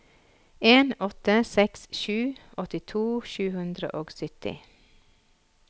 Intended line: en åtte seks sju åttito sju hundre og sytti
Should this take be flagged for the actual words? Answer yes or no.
no